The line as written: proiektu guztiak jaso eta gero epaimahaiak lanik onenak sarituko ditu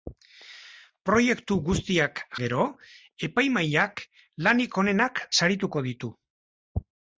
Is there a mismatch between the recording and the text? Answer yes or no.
yes